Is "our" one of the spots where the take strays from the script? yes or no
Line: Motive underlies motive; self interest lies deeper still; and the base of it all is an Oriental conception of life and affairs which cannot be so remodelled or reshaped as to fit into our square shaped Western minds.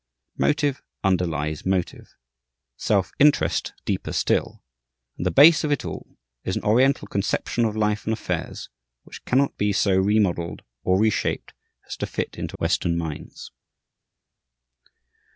yes